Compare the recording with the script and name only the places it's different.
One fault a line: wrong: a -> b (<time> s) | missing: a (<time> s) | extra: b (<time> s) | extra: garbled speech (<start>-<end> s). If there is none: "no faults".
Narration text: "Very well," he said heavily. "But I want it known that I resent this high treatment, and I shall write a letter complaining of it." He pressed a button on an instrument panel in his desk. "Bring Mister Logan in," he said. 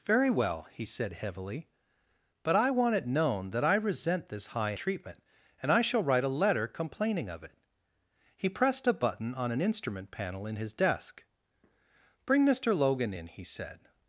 no faults